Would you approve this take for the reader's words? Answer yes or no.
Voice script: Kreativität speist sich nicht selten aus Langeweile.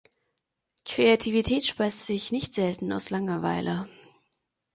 yes